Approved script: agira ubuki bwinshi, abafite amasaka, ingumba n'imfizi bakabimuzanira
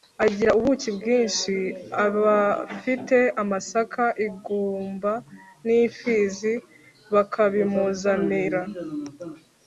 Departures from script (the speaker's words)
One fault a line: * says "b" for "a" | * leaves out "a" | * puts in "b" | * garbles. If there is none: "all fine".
all fine